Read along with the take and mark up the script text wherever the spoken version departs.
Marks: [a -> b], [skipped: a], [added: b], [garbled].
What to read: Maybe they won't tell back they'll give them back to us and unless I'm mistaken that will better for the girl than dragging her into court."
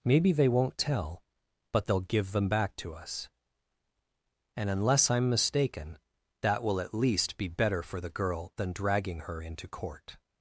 Maybe they won't tell [back -> but] they'll give them back to us and unless I'm mistaken that will [added: at least be] better for the girl than dragging her into court."